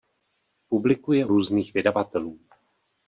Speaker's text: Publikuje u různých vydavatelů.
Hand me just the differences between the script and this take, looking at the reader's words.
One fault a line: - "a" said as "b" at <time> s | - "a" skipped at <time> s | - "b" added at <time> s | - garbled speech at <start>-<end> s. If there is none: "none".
- "u" skipped at 1.2 s